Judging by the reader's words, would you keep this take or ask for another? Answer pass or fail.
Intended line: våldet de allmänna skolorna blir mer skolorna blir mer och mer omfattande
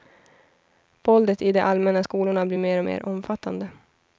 fail